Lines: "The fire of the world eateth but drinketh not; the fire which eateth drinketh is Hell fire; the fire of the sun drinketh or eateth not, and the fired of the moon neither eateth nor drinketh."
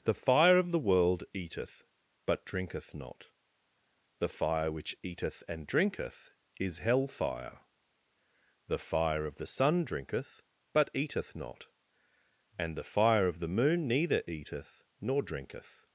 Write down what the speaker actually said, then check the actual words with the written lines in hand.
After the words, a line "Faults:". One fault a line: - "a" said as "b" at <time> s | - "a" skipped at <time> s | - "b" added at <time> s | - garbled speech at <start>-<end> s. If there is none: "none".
"The fire of the world eateth but drinketh not; the fire which eateth and drinketh is Hell fire; the fire of the sun drinketh but eateth not, and the fire of the moon neither eateth nor drinketh."
Faults:
- "and" added at 5.5 s
- "or" said as "but" at 10.7 s
- "fired" said as "fire" at 12.8 s